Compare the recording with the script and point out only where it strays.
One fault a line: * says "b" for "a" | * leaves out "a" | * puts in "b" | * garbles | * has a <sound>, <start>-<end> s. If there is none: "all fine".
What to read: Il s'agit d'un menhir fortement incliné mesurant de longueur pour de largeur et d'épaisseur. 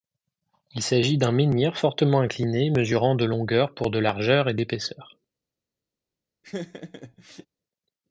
* has a laugh, 6.4-7.5 s